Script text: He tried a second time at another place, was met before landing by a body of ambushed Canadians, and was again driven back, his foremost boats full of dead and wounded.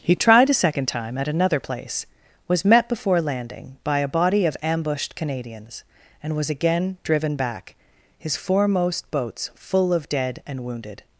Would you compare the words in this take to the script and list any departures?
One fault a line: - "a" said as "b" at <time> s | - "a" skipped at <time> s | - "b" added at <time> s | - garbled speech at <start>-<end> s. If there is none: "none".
none